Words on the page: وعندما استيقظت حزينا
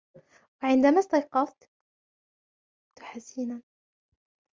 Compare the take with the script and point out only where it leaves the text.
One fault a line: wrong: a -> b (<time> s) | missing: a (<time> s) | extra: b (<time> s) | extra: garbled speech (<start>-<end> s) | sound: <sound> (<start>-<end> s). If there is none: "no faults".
no faults